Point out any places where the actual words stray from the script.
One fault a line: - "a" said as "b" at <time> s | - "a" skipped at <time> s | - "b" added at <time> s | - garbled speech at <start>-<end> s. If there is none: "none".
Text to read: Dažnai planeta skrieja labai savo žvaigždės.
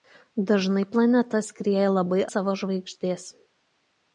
none